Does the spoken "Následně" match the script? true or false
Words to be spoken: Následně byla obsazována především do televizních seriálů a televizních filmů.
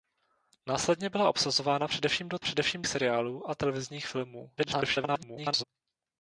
true